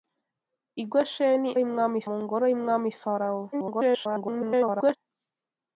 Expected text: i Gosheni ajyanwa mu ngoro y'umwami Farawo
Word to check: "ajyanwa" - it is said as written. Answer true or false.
false